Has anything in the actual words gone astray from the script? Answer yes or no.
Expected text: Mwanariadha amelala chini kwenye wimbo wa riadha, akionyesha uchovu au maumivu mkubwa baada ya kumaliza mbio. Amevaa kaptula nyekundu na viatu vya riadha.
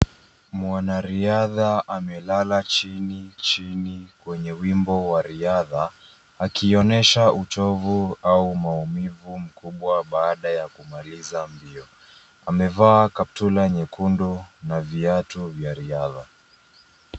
yes